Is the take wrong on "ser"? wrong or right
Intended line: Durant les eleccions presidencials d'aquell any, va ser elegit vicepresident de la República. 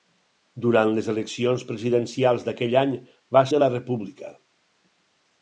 wrong